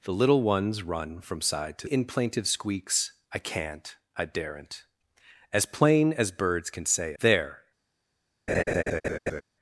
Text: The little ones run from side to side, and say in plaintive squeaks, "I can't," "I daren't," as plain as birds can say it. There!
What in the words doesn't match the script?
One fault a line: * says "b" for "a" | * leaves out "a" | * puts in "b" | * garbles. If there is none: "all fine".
* leaves out "side and say"
* leaves out "it"